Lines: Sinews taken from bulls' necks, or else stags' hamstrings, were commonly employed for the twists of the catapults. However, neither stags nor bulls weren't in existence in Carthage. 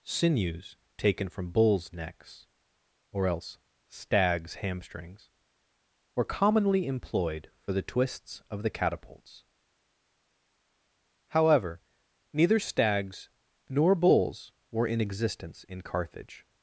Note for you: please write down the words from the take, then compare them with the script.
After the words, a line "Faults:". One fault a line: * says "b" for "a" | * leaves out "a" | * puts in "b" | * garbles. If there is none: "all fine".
Sinews taken from bulls' necks, or else stags' hamstrings, were commonly employed for the twists of the catapults. However, neither stags nor bulls were in existence in Carthage.
Faults:
* says "were" for "weren't"